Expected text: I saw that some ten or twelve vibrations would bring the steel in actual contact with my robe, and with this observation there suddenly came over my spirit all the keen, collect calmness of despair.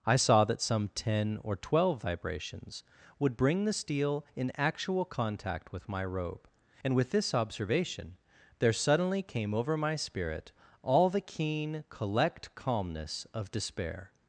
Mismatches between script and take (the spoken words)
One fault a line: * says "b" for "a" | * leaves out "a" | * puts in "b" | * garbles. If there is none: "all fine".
all fine